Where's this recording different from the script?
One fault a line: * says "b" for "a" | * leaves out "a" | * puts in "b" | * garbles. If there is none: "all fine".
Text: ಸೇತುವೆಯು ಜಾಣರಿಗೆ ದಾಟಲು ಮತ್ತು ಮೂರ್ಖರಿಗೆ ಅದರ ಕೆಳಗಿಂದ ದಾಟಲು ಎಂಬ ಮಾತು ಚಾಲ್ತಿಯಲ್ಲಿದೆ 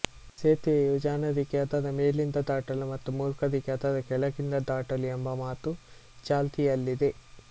* puts in "ಅದರ ಮೇಲಿಂದ"